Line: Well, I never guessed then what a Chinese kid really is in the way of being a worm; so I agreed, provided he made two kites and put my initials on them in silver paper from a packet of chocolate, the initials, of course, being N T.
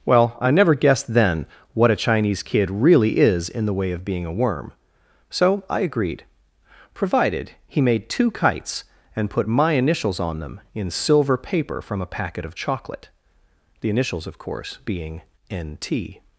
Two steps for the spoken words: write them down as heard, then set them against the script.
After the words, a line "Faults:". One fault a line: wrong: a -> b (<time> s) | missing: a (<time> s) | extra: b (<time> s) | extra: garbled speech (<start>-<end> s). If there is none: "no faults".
Well, I never guessed then what a Chinese kid really is in the way of being a worm; so I agreed, provided he made two kites and put my initials on them in silver paper from a packet of chocolate, the initials, of course, being N T.
Faults:
no faults